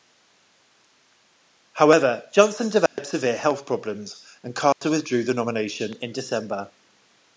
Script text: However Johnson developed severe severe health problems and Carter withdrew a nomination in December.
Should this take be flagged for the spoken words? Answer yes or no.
yes